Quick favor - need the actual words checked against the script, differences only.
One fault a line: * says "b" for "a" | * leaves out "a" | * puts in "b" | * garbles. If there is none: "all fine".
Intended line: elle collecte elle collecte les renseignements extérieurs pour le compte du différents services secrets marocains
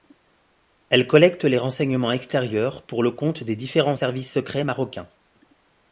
* leaves out "elle collecte"
* says "des" for "du"